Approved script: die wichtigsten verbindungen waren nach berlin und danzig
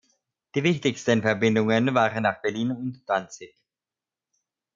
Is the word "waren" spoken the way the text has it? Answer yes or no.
yes